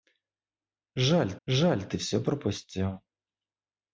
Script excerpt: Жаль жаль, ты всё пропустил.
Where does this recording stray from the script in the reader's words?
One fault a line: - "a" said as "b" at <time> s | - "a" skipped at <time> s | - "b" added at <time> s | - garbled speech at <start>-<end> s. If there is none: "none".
none